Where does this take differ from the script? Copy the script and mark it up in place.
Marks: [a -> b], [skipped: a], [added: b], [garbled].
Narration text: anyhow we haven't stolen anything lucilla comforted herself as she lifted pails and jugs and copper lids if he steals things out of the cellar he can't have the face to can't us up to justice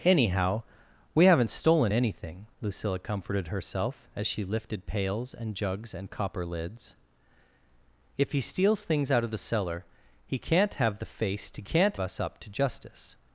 anyhow we haven't stolen anything lucilla comforted herself as she lifted pails and jugs and copper lids if he steals things out of the cellar he can't have the face to can't us up to justice